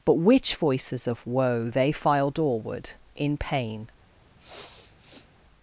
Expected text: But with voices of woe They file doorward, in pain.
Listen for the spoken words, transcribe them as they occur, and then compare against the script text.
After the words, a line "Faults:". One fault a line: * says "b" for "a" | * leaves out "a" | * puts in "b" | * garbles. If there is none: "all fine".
But which voices of woe They file doorward, in pain.
Faults:
* says "which" for "with"